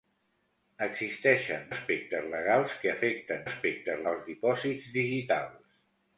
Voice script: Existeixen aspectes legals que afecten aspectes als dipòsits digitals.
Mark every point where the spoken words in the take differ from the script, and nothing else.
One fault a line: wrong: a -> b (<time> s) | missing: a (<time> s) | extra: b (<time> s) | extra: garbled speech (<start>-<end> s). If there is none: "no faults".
no faults